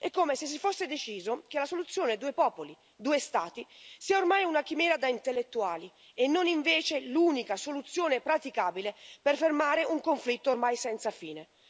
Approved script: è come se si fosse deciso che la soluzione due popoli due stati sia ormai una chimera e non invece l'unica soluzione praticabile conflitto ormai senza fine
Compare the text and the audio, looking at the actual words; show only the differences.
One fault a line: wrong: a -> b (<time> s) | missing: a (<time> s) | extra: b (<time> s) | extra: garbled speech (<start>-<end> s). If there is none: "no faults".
extra: da intellettuali (4.9 s)
extra: per fermare un (9.2 s)